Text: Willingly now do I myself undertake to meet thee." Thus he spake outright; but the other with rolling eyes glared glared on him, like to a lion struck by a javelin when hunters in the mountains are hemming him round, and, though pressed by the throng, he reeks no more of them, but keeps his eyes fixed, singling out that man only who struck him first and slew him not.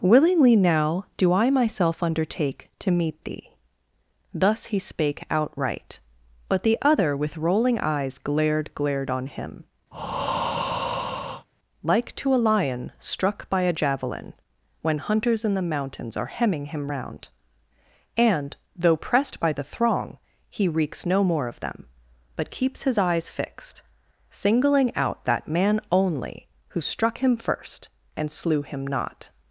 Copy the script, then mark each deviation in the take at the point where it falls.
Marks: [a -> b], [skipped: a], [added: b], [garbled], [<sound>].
Willingly now do I myself undertake to meet thee." Thus he spake outright; but the other with rolling eyes glared glared on him, [breath] like to a lion struck by a javelin when hunters in the mountains are hemming him round, and, though pressed by the throng, he reeks no more of them, but keeps his eyes fixed, singling out that man only who struck him first and slew him not.